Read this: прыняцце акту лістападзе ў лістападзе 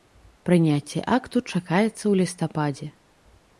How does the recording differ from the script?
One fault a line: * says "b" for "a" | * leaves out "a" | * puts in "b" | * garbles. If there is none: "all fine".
* says "чакаецца" for "лістападзе"